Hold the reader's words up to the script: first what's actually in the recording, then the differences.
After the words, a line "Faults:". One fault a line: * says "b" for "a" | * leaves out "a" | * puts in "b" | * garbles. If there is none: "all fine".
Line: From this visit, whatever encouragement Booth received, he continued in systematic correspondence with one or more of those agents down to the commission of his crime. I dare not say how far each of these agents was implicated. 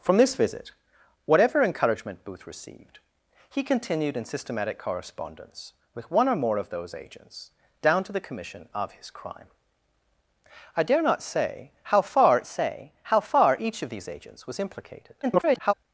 From this visit, whatever encouragement Booth received, he continued in systematic correspondence with one or more of those agents down to the commission of his crime. I dare not say how far say how far each of these agents was implicated. [garbled]
Faults:
* puts in "say how far"
* garbles